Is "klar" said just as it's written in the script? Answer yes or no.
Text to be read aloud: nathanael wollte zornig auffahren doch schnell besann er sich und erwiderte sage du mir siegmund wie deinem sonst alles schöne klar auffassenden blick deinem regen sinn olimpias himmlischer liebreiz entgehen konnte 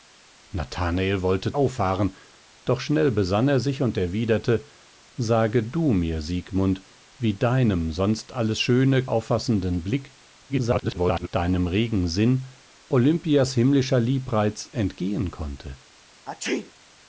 no